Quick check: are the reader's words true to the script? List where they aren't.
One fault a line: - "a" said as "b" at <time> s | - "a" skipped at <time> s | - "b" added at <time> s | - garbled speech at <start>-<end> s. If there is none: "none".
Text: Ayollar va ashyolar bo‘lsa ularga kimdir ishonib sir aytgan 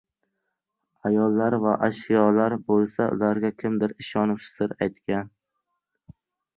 none